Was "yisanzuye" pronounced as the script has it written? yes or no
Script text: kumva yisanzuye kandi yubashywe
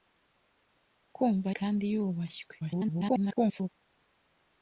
no